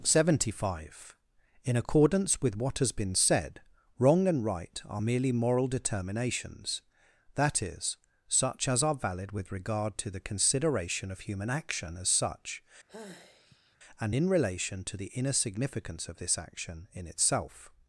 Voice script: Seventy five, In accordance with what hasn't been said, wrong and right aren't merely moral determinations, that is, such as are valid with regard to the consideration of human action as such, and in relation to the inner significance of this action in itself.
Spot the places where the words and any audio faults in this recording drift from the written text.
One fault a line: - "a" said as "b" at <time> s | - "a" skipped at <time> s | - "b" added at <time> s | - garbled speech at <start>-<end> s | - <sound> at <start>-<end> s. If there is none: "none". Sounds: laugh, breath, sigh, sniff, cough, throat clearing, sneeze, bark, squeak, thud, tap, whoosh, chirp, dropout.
- "hasn't" said as "has" at 2.8 s
- "aren't" said as "are" at 4.8 s
- sigh at 12.9-13.8 s